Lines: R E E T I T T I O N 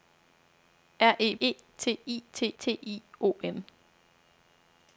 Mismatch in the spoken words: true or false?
false